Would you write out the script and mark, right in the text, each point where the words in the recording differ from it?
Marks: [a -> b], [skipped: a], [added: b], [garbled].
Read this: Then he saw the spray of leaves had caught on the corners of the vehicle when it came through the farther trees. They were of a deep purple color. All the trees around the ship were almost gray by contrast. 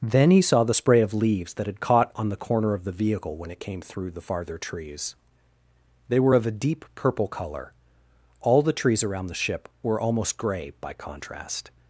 Then he saw the spray of leaves [added: that] had caught on the [corners -> corner] of the vehicle when it came through the farther trees. They were of a deep purple color. All the trees around the ship were almost gray by contrast.